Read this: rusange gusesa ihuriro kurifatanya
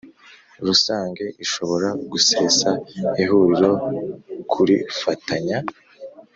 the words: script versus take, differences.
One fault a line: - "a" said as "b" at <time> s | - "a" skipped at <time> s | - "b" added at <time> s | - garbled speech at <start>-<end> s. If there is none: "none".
- "ishobora" added at 1.4 s